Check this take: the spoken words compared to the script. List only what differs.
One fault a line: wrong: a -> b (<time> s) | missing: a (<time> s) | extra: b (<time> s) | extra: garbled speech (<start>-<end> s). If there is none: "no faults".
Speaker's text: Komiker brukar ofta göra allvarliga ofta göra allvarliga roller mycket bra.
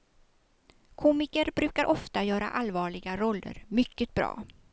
missing: ofta göra allvarliga (3.2 s)